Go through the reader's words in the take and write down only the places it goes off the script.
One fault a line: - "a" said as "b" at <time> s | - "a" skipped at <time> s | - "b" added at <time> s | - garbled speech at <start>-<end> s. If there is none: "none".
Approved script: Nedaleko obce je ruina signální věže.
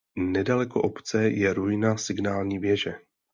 none